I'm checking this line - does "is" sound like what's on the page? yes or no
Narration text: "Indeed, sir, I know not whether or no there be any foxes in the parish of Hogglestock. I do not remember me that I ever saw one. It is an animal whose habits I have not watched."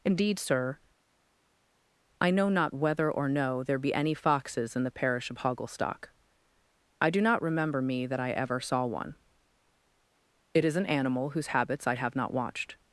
yes